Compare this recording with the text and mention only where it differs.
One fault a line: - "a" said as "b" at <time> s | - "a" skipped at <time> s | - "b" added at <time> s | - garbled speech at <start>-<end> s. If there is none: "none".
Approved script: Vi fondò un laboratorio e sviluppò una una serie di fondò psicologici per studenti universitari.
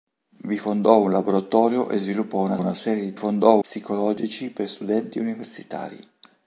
none